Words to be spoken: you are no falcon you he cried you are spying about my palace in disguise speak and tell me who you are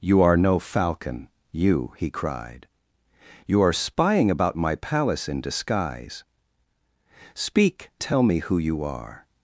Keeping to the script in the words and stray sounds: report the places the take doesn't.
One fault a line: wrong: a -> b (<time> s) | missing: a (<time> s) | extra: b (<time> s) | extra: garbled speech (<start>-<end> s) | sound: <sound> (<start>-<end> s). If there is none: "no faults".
missing: and (7.9 s)